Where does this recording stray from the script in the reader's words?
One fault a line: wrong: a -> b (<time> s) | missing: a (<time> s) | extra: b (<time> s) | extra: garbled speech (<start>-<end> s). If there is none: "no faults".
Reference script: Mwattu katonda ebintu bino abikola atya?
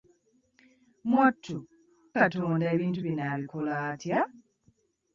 no faults